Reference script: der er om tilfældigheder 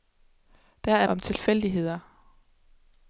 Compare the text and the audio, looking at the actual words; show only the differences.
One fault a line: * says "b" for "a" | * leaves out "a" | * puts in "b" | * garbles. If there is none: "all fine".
all fine